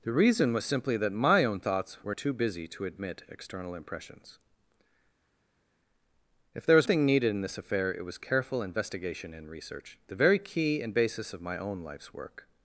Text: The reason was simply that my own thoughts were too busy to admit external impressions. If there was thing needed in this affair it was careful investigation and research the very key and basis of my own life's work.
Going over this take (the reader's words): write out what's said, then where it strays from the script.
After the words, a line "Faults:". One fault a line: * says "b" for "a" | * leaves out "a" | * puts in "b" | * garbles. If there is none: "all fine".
The reason was simply that my own thoughts were too busy to admit external impressions. If there was thing needed in this affair it was careful investigation and research the very key and basis of my own life's work.
Faults:
all fine